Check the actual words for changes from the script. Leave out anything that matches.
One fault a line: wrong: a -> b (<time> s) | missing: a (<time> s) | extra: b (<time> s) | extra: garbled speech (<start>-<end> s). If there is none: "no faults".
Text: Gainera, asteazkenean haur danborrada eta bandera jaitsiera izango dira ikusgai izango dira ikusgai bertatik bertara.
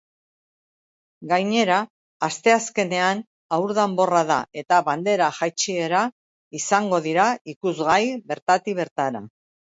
missing: izango dira ikusgai (8.0 s)